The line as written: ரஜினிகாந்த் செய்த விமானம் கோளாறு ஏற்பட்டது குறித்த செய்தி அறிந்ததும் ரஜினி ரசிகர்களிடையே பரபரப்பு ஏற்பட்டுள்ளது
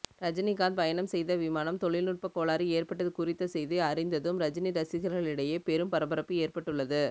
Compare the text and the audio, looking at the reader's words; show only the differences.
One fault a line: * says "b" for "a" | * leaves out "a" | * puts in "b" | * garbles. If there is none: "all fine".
* puts in "பயணம்"
* puts in "தொழில்நுட்ப"
* puts in "பெரும்"